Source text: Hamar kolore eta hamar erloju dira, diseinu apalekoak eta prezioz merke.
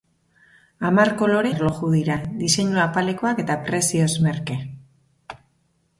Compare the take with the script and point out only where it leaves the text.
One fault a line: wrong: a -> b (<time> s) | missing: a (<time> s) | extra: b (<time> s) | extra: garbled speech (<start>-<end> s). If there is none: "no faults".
missing: eta hamar (1.5 s)